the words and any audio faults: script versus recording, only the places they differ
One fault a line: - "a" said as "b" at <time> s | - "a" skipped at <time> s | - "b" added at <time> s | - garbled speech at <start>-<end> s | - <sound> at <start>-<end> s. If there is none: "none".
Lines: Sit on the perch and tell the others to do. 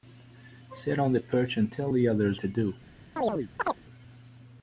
- chirp at 3.2-3.8 s